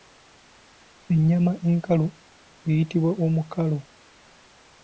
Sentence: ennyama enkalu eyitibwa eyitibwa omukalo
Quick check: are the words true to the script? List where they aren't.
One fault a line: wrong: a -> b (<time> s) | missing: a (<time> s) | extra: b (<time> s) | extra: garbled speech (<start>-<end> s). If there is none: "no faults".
missing: eyitibwa (3.1 s)